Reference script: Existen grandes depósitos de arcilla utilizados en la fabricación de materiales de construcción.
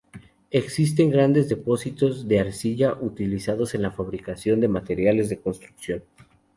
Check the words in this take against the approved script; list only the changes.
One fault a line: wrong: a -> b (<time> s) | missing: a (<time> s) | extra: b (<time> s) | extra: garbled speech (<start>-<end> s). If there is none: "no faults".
no faults